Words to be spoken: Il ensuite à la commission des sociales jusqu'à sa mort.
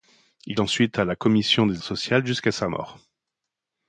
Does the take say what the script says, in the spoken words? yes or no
yes